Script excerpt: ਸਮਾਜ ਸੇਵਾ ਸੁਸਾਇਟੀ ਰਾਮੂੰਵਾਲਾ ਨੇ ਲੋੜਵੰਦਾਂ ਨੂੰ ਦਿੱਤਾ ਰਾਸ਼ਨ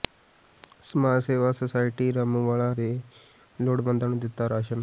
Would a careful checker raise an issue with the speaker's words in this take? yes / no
no